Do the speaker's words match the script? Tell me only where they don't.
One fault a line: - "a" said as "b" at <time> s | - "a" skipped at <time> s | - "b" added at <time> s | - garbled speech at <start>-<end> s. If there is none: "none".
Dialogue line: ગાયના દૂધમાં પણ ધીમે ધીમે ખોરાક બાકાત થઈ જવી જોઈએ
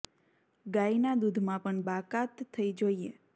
- "ધીમે ધીમે ખોરાક" skipped at 1.8 s
- "જવી" skipped at 2.7 s